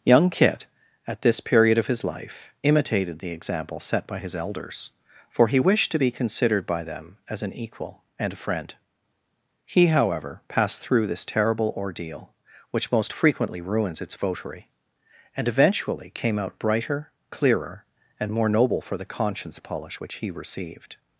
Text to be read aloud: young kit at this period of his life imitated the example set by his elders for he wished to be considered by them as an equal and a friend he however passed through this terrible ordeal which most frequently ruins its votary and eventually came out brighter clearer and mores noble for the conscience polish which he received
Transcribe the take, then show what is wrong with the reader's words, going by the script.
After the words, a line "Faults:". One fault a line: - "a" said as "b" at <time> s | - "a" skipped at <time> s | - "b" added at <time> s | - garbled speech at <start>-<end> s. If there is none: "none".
young kit at this period of his life imitated the example set by his elders for he wished to be considered by them as an equal and a friend he however passed through this terrible ordeal which most frequently ruins its votary and eventually came out brighter clearer and more noble for the conscience polish which he received
Faults:
- "mores" said as "more" at 18.3 s